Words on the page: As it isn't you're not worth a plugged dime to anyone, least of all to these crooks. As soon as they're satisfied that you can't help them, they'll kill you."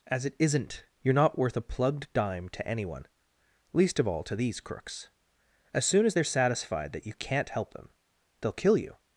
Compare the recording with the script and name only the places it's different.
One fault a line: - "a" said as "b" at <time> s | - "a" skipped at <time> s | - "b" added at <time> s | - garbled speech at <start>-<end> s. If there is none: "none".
none